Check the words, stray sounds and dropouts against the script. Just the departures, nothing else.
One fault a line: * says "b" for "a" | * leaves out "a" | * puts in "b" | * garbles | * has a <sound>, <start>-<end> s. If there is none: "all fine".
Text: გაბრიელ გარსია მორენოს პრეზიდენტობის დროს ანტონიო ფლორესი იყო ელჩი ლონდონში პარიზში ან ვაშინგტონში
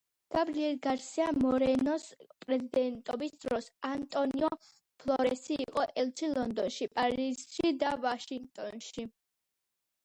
* says "და" for "ან"